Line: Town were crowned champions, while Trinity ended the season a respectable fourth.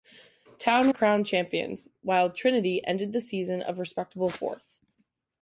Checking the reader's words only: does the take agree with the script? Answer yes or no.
no